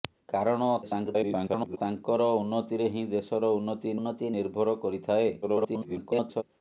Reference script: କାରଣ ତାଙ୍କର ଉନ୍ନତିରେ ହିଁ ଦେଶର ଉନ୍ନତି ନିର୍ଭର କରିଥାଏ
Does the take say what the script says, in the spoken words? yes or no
no